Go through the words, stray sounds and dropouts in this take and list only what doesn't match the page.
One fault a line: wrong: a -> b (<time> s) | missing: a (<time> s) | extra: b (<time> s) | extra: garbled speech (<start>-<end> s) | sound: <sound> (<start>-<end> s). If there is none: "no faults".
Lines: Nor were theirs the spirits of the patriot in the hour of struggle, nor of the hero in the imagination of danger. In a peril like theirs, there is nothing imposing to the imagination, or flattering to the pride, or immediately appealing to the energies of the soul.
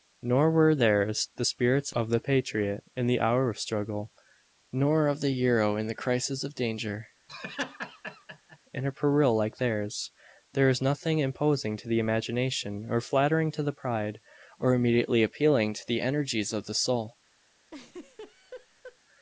wrong: imagination -> crisis (6.0 s)
sound: laugh (7.3-8.6 s)
sound: laugh (17.7-19.0 s)